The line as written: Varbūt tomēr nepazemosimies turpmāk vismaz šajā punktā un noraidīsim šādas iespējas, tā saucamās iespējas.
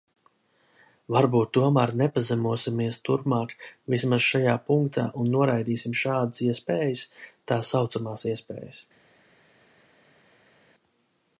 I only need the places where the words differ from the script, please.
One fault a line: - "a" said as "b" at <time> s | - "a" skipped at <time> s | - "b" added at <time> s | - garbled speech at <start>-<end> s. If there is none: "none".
none